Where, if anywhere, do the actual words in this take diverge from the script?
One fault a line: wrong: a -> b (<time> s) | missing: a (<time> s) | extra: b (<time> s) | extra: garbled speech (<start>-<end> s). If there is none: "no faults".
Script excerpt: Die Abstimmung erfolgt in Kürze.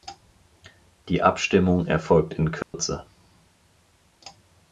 no faults